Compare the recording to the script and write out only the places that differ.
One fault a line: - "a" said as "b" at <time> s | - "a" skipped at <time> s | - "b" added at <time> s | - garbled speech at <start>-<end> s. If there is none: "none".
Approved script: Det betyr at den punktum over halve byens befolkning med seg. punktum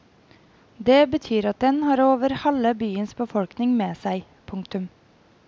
- "punktum" said as "har" at 1.8 s